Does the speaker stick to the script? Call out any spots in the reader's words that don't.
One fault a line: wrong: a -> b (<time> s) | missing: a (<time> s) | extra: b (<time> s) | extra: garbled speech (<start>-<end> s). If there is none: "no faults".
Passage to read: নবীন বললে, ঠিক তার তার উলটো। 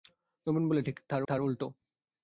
no faults